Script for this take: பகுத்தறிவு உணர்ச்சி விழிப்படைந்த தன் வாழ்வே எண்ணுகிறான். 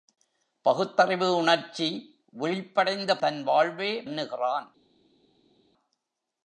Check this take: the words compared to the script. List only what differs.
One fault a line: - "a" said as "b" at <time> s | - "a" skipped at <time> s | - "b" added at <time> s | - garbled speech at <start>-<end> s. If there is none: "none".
none